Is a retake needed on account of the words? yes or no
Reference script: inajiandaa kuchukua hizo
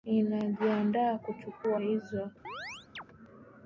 no